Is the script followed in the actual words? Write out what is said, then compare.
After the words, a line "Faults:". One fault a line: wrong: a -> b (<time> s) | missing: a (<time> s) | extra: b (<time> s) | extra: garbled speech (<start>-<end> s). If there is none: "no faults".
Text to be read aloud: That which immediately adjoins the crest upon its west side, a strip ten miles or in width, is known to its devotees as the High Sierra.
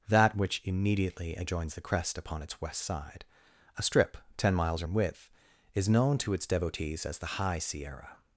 That which immediately adjoins the crest upon its west side, a strip ten miles or in width, is known to its devotees as the High Sierra.
Faults:
no faults